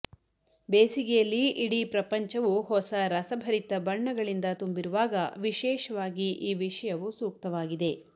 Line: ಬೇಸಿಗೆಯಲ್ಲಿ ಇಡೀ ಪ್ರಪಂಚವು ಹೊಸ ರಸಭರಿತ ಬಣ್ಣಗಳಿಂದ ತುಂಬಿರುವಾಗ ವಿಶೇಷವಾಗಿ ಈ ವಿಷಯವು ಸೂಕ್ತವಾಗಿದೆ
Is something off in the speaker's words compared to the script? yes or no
no